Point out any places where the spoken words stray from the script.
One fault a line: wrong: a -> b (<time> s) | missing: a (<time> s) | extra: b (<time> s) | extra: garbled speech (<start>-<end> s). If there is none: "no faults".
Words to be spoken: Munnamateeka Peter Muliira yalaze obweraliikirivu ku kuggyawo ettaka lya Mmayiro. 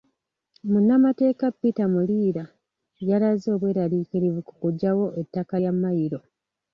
no faults